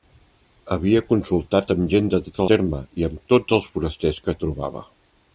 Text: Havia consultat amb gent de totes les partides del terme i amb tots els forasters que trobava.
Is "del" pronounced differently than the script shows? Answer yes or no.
yes